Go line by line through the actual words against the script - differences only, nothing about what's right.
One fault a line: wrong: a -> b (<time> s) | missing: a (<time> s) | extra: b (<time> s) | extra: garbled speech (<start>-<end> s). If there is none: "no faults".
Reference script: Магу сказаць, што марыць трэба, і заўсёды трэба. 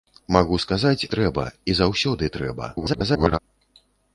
missing: што марыць (1.1 s)
extra: garbled speech (2.8-3.4 s)